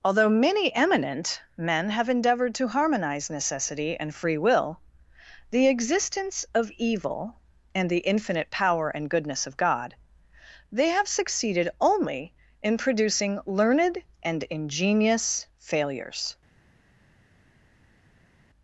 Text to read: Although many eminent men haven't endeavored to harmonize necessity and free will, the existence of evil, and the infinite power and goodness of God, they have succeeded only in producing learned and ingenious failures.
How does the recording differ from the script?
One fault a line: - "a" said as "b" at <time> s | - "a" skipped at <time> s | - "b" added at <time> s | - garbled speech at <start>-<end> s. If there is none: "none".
- "haven't" said as "have" at 1.9 s